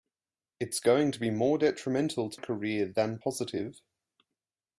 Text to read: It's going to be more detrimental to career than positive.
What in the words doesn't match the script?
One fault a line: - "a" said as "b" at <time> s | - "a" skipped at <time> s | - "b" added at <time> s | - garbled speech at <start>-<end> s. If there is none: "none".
none